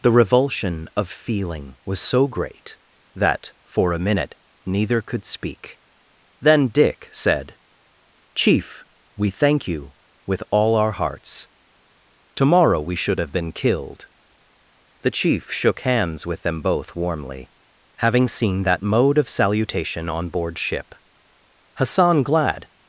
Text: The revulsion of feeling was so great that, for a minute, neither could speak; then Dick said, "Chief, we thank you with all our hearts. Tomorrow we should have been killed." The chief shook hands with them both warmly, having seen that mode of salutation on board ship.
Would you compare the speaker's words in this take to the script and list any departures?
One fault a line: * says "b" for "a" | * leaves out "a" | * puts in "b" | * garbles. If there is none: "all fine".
* puts in "Hassan glad"